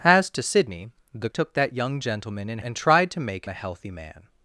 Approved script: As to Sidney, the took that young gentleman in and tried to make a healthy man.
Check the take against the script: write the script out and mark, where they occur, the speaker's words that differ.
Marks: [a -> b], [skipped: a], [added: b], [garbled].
As to Sidney, the took that young gentleman in and tried to make a healthy man.